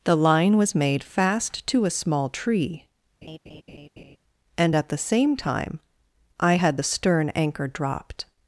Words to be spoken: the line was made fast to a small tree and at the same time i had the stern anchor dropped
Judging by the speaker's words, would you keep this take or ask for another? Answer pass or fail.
pass